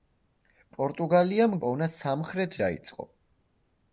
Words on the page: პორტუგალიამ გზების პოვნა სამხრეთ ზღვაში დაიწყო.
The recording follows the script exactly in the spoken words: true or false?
false